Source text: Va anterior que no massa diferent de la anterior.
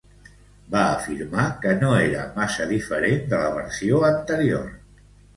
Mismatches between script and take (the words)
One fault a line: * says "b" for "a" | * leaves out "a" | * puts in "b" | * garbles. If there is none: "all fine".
* says "afirmar" for "anterior"
* puts in "era"
* puts in "versió"